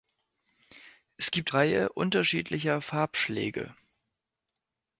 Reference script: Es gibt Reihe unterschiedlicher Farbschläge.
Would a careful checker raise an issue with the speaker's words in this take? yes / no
no